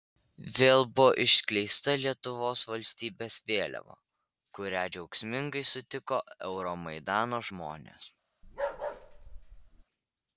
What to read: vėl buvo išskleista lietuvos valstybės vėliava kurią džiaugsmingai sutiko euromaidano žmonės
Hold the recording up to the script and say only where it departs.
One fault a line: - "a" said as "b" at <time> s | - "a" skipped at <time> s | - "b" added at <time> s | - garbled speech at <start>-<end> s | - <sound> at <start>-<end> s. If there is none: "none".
- bark at 8.4-9.8 s